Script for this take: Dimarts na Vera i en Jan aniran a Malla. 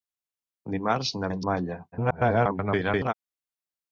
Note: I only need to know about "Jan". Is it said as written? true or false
false